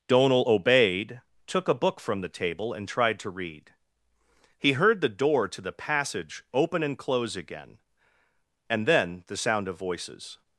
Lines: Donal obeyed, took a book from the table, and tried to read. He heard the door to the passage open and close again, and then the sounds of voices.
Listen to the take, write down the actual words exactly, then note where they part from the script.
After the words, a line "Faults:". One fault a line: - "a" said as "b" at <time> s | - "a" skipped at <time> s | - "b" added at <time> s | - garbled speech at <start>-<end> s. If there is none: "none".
Donal obeyed, took a book from the table, and tried to read. He heard the door to the passage open and close again, and then the sound of voices.
Faults:
- "sounds" said as "sound" at 9.4 s